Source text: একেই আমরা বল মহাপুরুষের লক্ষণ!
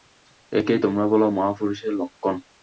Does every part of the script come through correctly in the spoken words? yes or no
no